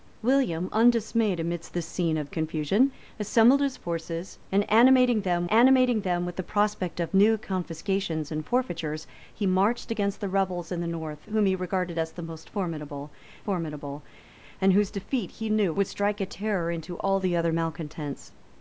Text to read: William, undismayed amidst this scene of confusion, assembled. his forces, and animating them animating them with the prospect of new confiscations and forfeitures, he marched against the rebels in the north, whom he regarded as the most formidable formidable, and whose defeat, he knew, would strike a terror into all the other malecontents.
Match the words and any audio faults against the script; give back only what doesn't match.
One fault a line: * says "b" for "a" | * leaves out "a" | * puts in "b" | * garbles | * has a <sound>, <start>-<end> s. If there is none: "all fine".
all fine